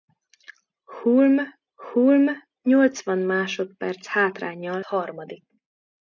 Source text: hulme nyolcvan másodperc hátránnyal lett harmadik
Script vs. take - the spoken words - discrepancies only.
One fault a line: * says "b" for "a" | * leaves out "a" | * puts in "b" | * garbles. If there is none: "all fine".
* puts in "hulme"
* leaves out "lett"